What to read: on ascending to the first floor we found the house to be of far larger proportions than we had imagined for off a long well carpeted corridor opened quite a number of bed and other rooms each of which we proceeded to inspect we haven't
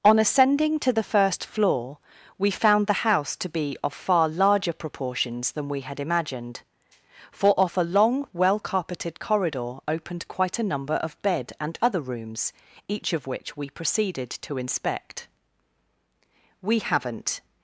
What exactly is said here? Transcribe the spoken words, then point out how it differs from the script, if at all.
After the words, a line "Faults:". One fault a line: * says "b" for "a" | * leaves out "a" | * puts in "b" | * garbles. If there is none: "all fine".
on ascending to the first floor we found the house to be of far larger proportions than we had imagined for off a long well carpeted corridor opened quite a number of bed and other rooms each of which we proceeded to inspect we haven't
Faults:
all fine